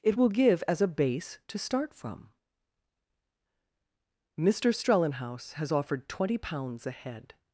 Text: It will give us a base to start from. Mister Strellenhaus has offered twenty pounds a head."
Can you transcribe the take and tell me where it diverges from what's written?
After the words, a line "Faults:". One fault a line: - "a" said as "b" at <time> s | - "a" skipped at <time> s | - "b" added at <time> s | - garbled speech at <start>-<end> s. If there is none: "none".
It will give as a base to start from. Mister Strellenhaus has offered twenty pounds a head."
Faults:
- "us" said as "as" at 0.7 s